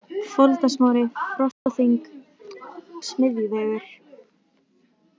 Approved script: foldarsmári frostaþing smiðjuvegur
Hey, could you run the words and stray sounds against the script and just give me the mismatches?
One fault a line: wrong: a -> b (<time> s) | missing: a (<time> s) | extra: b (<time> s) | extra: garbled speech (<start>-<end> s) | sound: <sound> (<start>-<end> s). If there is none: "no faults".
sound: dropout (1.5-1.7 s)